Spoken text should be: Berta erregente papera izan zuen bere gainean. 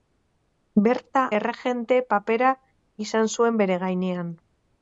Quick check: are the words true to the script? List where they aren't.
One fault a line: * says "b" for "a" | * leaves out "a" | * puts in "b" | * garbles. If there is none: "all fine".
all fine